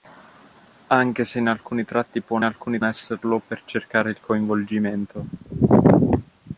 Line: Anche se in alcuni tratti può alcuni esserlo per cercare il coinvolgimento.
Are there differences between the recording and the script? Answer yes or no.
no